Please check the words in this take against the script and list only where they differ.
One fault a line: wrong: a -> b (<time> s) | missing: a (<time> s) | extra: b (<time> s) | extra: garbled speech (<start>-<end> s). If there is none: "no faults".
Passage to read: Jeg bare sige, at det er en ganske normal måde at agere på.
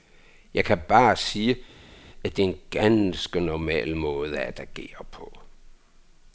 extra: kan (0.7 s)